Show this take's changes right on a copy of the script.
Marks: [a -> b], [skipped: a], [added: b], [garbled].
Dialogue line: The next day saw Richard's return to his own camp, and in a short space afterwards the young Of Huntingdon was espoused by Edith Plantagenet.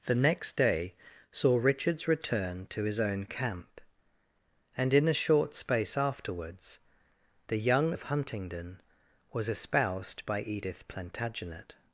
The next day saw Richard's return to his own camp, and in a short space afterwards the young Of Huntingdon was espoused by Edith Plantagenet.